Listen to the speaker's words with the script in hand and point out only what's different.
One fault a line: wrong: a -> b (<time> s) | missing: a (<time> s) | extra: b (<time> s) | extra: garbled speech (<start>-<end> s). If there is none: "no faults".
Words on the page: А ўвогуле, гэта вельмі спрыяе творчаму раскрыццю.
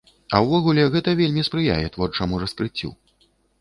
no faults